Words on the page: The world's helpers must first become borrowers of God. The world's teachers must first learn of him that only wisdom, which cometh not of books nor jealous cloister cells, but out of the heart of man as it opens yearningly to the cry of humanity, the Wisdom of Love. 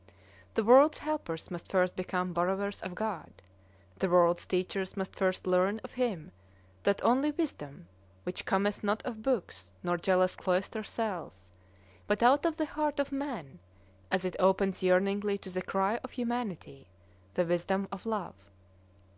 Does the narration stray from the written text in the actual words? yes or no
no